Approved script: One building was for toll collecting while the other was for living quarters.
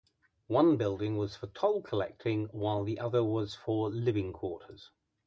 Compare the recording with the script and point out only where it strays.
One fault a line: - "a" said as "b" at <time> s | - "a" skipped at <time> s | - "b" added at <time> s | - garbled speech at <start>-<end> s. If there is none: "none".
none